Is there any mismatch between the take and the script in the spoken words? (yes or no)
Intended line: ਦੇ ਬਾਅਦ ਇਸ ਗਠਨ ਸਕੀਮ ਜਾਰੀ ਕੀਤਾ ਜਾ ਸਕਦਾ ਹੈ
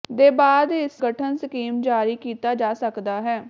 no